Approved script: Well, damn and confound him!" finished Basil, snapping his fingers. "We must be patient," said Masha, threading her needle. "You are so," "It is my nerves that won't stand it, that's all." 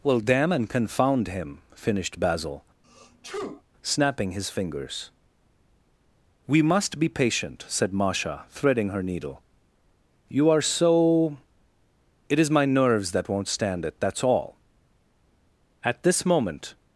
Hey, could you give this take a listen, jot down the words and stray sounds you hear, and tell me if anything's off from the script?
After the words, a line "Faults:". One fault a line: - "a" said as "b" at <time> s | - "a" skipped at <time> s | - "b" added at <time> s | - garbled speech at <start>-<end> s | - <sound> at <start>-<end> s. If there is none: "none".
Well, damn and confound him!" finished Basil, snapping his fingers. "We must be patient," said Masha, threading her needle. "You are so," "It is my nerves that won't stand it, that's all." At this moment
Faults:
- sneeze at 2.8-3.6 s
- "At this moment" added at 15.8 s